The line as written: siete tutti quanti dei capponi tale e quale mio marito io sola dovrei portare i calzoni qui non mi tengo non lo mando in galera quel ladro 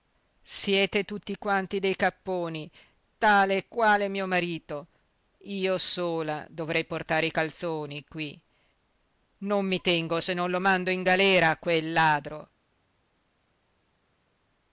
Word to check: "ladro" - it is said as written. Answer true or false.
true